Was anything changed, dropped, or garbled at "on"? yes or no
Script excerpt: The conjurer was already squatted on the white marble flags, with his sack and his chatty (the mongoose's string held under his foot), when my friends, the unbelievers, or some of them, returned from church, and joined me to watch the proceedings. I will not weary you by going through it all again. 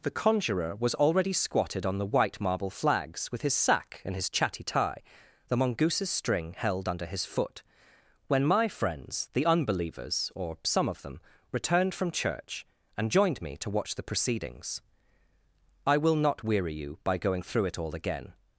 no